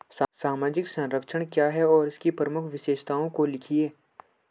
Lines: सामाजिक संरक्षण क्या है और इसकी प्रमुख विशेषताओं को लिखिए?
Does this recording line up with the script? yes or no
yes